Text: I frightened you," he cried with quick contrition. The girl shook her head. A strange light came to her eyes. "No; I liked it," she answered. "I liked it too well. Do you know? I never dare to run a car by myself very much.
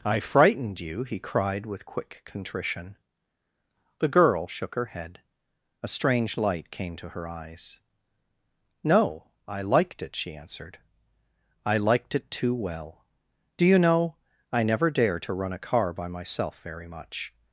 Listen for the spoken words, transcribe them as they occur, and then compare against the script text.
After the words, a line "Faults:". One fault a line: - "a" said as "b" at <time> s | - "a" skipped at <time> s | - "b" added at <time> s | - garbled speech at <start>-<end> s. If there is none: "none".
I frightened you," he cried with quick contrition. The girl shook her head. A strange light came to her eyes. "No; I liked it," she answered. "I liked it too well. Do you know? I never dare to run a car by myself very much.
Faults:
none